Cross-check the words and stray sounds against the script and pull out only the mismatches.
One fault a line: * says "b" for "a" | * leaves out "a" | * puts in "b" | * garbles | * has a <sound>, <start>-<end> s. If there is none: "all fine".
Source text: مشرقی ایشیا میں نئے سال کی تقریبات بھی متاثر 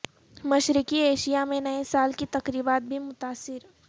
all fine